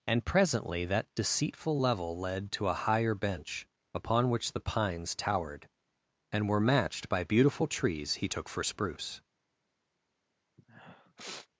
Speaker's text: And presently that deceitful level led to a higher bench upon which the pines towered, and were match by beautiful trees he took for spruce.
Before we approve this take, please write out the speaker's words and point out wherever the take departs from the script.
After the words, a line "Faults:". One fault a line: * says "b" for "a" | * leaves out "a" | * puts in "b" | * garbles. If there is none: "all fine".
And presently that deceitful level led to a higher bench upon which the pines towered, and were matched by beautiful trees he took for spruce.
Faults:
* says "matched" for "match"